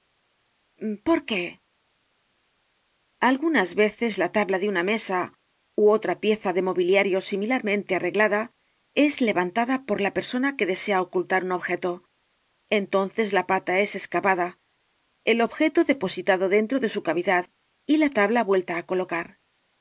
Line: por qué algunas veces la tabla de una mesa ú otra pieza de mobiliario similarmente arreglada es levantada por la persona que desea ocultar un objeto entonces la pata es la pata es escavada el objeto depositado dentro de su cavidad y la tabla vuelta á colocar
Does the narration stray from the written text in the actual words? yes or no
yes